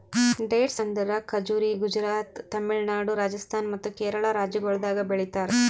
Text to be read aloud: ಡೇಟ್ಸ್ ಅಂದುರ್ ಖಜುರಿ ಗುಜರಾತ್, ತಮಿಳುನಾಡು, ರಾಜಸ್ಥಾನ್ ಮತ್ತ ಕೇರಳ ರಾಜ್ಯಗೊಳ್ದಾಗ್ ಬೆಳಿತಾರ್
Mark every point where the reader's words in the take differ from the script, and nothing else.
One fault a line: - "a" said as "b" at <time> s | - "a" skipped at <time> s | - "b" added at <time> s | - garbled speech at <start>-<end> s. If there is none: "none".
none